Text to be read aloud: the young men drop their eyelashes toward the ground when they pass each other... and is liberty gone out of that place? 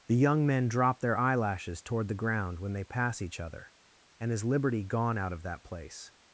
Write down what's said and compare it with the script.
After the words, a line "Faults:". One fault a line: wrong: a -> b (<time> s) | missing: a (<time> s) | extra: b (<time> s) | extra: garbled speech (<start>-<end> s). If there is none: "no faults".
the young men drop their eyelashes toward the ground when they pass each other... and is liberty gone out of that place?
Faults:
no faults